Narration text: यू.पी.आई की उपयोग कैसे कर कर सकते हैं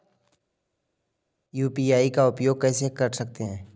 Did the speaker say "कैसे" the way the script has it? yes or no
yes